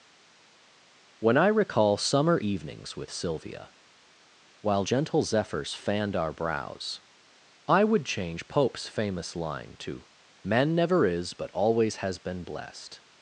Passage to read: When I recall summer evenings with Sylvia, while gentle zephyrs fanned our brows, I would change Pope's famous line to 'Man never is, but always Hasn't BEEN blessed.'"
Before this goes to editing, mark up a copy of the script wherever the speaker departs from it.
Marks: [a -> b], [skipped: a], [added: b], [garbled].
When I recall summer evenings with Sylvia, while gentle zephyrs fanned our brows, I would change Pope's famous line to 'Man never is, but always [Hasn't -> HAS] BEEN blessed.'"